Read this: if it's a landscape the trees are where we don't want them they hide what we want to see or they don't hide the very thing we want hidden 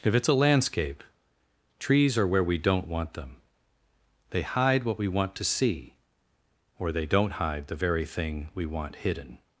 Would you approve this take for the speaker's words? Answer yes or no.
no